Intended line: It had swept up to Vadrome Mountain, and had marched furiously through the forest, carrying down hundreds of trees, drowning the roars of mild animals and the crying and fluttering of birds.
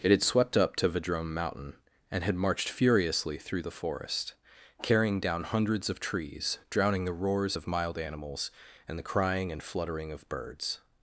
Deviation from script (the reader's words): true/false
false